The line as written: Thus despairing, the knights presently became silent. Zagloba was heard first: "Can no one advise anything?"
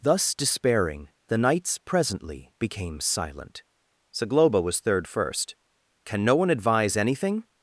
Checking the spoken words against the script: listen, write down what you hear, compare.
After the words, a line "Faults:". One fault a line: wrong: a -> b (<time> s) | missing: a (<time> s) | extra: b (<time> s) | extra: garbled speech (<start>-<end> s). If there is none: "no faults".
Thus despairing, the knights presently became silent. Zagloba was third first: "Can no one advise anything?"
Faults:
wrong: heard -> third (4.8 s)